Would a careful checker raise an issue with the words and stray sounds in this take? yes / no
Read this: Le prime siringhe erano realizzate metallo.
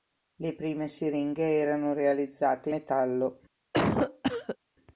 yes